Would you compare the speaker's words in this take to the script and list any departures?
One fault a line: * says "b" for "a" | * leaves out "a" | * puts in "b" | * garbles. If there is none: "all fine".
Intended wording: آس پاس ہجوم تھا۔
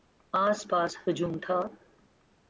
all fine